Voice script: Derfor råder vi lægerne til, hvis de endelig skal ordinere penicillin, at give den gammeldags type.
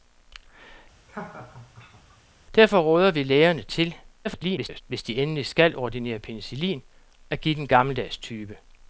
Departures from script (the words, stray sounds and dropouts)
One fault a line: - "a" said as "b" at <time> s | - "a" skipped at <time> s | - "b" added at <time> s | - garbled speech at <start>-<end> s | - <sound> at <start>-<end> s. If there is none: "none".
- laugh at 1.1-2.2 s
- garbled speech at 4.2-4.8 s